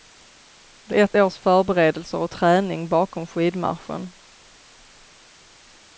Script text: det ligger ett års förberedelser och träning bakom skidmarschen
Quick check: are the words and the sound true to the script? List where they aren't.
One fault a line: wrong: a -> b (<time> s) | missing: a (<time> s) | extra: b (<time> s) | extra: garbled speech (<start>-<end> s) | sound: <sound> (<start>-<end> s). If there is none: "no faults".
missing: ligger (0.9 s)